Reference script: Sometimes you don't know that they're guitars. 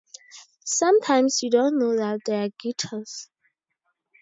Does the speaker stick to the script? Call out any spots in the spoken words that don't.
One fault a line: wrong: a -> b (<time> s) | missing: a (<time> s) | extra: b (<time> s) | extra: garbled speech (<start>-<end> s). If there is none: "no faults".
no faults